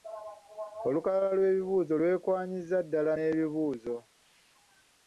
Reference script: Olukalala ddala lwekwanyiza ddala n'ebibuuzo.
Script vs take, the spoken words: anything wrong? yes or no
yes